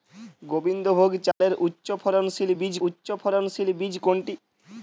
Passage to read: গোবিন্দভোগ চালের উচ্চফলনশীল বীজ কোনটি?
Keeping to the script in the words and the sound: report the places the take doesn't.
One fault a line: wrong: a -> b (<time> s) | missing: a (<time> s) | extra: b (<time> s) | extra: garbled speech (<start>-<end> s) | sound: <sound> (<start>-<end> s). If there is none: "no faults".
sound: dropout (1.3-1.4 s)
extra: উচ্চফলনশীল বীজ (2.8 s)